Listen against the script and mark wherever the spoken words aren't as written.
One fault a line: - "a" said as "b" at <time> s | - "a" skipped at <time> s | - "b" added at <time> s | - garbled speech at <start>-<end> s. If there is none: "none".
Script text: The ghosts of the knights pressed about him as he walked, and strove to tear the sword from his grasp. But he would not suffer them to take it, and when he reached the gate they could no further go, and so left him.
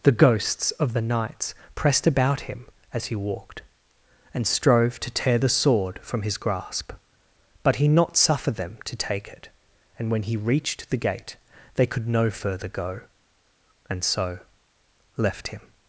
- "would" skipped at 7.9 s